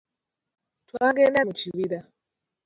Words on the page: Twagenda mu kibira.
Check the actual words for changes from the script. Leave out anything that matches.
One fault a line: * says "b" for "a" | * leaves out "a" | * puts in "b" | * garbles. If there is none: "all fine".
all fine